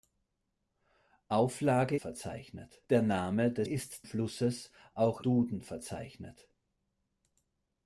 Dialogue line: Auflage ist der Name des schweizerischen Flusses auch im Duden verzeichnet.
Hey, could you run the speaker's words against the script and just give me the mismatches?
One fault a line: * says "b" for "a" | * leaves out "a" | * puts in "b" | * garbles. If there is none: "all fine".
* says "verzeichnet" for "ist"
* says "ist" for "schweizerischen"
* leaves out "im"